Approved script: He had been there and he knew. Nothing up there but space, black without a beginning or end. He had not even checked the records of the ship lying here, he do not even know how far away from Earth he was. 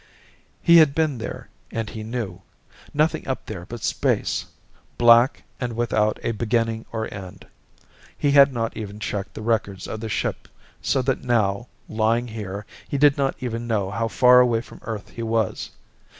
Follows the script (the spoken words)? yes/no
no